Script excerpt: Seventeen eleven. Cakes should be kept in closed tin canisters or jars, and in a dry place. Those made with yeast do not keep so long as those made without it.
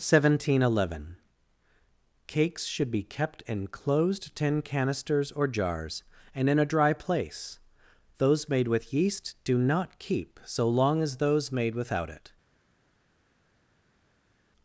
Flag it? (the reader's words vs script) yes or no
no